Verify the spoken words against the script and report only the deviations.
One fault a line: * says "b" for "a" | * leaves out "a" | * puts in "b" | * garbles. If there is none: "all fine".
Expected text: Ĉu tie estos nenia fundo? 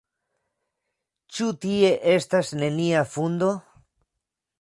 * says "estas" for "estos"